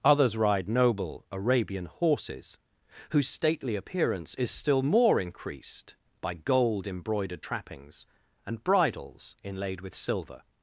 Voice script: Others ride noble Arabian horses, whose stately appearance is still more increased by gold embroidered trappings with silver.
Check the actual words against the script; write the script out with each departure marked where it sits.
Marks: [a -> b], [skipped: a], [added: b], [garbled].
Others ride noble Arabian horses, whose stately appearance is still more increased by gold embroidered trappings [added: and bridles inlaid] with silver.